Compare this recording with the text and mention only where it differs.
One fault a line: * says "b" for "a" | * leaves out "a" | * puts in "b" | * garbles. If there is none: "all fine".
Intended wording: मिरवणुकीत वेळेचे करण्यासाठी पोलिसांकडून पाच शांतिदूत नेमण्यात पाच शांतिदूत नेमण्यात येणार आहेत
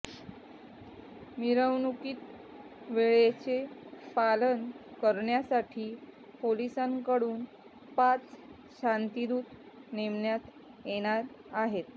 * puts in "पालन"
* leaves out "पाच शांतिदूत नेमण्यात"